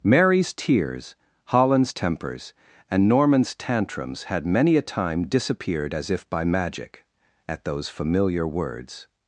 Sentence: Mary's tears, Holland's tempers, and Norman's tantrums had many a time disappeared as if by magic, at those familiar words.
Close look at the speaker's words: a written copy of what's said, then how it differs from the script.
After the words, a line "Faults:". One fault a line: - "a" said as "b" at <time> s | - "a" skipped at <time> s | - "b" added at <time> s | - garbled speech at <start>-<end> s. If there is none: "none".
Mary's tears, Holland's tempers, and Norman's tantrums had many a time disappeared as if by magic, at those familiar words.
Faults:
none